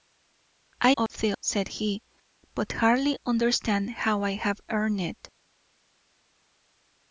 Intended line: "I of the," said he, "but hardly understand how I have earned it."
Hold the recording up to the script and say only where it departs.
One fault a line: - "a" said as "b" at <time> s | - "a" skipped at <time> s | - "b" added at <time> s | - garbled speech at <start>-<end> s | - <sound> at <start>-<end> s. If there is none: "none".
- dropout at 1.1-1.1 s